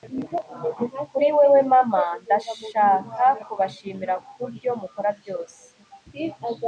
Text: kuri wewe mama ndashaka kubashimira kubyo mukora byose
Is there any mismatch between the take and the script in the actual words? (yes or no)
no